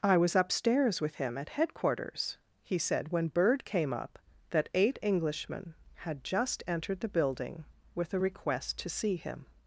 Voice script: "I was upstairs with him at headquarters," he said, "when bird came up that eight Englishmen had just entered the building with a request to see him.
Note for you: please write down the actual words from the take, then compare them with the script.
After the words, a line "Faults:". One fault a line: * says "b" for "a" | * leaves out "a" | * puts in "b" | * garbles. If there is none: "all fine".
"I was upstairs with him at headquarters," he said, "when bird came up that eight Englishmen had just entered the building with a request to see him.
Faults:
all fine